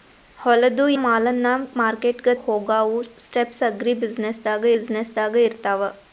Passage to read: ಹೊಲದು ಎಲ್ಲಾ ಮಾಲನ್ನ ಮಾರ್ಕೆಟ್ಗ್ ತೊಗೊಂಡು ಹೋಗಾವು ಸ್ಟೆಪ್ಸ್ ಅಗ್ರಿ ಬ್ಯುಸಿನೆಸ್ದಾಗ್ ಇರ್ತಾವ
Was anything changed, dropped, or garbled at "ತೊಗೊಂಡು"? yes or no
yes